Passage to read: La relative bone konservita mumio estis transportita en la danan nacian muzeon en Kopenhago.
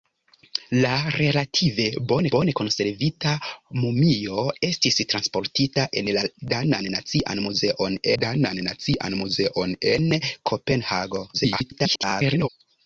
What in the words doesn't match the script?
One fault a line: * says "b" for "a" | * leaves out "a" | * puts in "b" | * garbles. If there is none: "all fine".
* puts in "bone"
* puts in "danan nacian muzeon"
* garbles